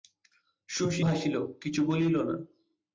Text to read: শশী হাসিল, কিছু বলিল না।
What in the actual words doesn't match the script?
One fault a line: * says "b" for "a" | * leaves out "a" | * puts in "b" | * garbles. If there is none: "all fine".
all fine